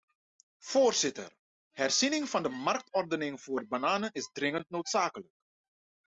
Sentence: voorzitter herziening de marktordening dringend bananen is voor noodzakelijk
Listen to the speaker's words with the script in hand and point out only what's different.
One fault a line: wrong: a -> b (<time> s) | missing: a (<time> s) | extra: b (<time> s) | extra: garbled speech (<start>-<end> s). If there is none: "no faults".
extra: van (2.3 s)
wrong: dringend -> voor (3.4 s)
wrong: voor -> dringend (4.3 s)